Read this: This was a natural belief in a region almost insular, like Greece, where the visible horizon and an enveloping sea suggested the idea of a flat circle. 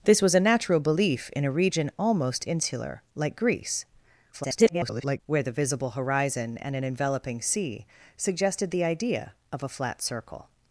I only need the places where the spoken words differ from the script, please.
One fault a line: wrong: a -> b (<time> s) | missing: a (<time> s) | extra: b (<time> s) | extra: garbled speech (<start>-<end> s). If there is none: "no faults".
extra: garbled speech (4.3-5.2 s)